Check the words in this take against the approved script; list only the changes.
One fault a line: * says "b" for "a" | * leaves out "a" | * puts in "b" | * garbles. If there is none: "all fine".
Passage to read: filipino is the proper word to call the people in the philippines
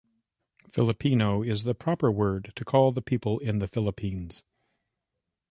all fine